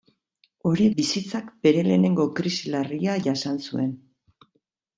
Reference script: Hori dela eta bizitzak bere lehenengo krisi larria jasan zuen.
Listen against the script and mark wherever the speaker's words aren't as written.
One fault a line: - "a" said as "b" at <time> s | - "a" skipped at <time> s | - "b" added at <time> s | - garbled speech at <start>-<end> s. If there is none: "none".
- "dela eta" skipped at 0.9 s